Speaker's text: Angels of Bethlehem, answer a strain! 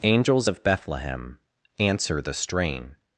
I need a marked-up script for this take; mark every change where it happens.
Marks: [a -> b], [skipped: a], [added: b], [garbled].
Angels of Bethlehem, answer [a -> the] strain!